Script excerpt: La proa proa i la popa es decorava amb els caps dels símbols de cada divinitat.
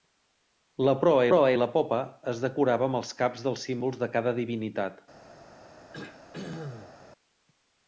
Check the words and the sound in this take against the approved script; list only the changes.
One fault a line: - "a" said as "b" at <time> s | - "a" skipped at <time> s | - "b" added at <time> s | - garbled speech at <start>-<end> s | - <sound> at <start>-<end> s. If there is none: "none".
- throat clearing at 5.9-7.0 s